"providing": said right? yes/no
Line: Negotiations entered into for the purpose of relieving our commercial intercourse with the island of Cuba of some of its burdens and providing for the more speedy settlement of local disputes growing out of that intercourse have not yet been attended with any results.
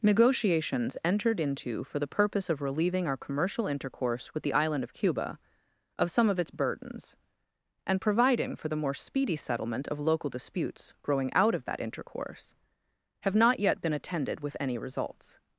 yes